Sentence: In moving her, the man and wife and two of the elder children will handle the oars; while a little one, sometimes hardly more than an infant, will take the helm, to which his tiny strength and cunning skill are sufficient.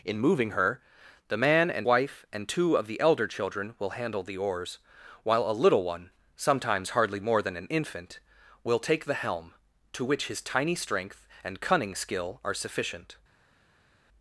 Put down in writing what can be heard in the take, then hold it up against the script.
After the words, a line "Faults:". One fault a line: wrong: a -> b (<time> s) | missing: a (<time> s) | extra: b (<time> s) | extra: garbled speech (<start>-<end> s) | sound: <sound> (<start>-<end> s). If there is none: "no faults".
In moving her, the man and wife and two of the elder children will handle the oars; while a little one, sometimes hardly more than an infant, will take the helm, to which his tiny strength and cunning skill are sufficient.
Faults:
no faults